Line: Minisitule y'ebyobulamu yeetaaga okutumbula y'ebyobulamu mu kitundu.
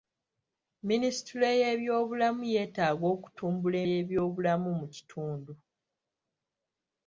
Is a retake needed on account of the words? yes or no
no